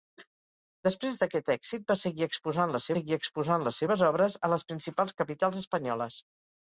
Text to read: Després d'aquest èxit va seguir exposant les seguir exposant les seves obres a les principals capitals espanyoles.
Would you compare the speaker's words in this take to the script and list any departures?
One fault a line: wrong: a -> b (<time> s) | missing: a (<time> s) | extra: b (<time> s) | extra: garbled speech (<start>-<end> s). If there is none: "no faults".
no faults